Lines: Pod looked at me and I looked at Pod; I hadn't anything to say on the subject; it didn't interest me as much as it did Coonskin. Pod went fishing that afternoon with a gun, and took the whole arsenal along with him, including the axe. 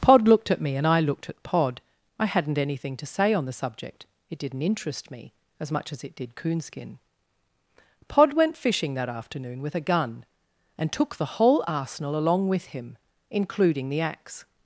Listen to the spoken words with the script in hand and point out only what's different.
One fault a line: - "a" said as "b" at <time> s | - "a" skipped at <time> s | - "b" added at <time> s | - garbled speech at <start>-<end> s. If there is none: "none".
none